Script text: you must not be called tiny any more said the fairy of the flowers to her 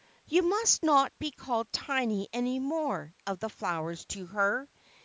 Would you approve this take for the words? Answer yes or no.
no